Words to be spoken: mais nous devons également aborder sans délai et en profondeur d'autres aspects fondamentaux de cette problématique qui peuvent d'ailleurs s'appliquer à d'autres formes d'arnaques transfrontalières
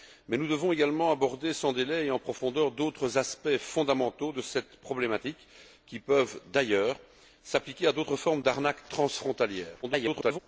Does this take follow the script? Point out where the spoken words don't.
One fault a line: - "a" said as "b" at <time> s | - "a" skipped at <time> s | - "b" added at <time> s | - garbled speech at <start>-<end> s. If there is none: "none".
- garbled speech at 9.8-10.4 s